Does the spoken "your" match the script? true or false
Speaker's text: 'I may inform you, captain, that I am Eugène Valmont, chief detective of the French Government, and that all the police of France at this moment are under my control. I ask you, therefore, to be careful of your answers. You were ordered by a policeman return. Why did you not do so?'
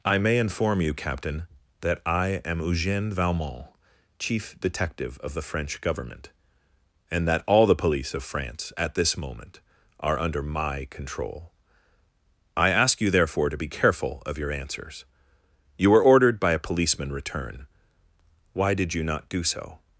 true